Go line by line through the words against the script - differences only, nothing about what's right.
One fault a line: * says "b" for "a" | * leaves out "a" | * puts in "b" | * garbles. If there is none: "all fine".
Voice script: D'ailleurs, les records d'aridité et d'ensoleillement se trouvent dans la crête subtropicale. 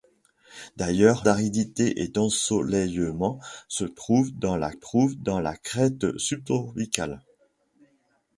* leaves out "les records"
* puts in "trouvent dans la"